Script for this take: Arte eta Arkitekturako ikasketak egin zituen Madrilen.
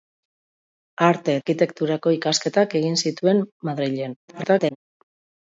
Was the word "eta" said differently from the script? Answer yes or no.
yes